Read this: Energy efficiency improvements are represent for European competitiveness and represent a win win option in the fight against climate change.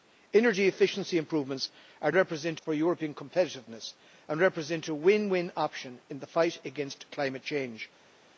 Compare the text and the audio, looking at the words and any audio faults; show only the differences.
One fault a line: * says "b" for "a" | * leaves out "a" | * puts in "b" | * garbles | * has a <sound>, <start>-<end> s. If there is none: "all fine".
all fine